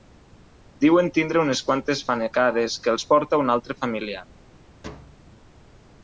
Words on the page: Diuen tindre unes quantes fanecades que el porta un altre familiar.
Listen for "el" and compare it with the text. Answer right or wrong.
wrong